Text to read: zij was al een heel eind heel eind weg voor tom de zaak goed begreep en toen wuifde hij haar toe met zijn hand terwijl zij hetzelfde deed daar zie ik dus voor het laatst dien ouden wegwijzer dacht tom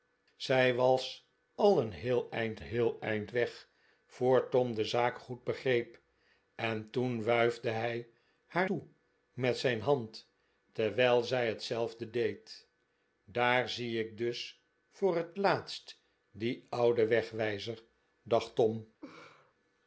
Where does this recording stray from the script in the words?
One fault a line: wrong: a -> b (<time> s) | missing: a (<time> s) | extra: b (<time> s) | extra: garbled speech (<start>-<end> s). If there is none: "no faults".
no faults